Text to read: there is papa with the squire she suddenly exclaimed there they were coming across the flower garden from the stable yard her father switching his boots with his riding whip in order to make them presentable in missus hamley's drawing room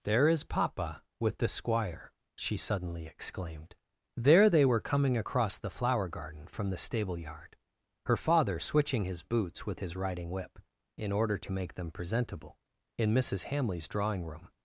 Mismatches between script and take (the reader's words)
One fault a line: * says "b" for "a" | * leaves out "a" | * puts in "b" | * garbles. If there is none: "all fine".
all fine